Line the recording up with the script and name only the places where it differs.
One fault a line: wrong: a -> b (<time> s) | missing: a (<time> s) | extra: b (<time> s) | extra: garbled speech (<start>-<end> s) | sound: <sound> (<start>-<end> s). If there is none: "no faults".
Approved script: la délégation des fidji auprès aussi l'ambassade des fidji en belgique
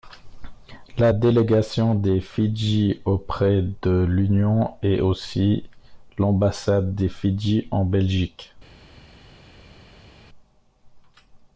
extra: de l'union est (3.8 s)